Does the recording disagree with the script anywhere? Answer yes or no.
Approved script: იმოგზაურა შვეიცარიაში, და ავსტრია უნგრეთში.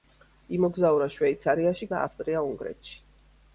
no